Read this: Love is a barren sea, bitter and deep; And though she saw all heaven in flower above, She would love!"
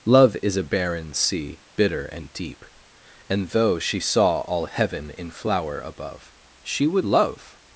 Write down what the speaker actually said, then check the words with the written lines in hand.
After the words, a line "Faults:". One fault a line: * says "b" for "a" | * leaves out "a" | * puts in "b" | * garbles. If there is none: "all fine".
Love is a barren sea, bitter and deep; And though she saw all heaven in flower above, She would love!"
Faults:
all fine